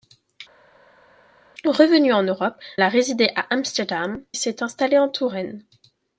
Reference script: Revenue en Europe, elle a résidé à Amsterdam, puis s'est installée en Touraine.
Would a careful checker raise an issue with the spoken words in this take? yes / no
yes